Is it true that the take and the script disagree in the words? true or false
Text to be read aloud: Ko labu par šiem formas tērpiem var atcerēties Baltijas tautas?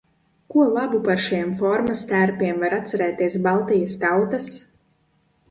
false